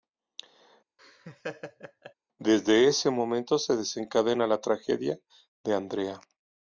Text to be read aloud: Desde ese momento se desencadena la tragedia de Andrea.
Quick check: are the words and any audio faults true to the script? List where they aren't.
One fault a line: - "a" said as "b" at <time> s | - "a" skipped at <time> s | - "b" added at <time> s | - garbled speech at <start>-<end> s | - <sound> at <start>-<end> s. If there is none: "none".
- laugh at 1.0-2.1 s